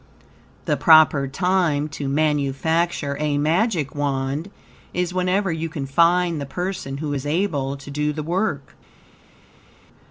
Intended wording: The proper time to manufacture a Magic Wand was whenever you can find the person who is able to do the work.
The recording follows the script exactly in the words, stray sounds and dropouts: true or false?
false